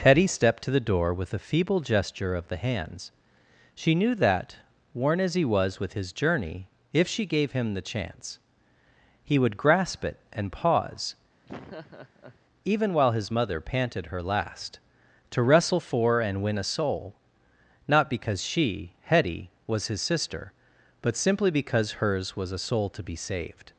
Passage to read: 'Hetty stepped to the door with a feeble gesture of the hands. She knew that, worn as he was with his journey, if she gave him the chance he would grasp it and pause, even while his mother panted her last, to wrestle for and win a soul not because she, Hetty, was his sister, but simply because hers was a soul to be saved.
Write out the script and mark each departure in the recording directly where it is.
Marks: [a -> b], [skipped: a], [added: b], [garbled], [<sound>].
'Hetty stepped to the door with a feeble gesture of the hands. She knew that, worn as he was with his journey, if she gave him the chance he would grasp it and pause, [laugh] even while his mother panted her last, to wrestle for and win a soul not because she, Hetty, was his sister, but simply because hers was a soul to be saved.